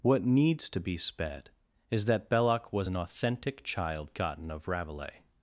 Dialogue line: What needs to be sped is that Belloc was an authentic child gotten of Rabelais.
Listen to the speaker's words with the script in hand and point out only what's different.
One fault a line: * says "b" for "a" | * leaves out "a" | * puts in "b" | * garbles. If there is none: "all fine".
all fine